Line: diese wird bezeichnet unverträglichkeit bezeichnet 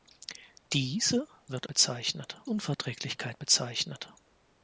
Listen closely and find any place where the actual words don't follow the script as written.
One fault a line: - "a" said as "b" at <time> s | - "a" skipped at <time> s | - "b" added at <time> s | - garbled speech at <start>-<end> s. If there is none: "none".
none